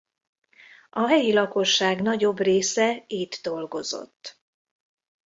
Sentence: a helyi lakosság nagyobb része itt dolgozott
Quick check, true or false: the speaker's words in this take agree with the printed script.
true